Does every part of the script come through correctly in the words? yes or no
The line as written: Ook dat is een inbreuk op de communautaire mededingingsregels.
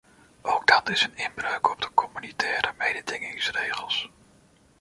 yes